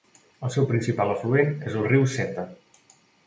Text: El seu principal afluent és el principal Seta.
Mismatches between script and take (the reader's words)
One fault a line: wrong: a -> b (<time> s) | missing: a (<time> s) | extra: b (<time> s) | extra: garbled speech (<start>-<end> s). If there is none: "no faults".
wrong: principal -> riu (1.9 s)